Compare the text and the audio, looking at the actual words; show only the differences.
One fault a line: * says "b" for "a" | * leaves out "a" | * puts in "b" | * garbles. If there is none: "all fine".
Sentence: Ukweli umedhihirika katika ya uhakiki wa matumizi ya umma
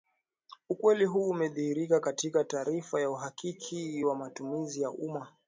* puts in "huu"
* puts in "taarifa"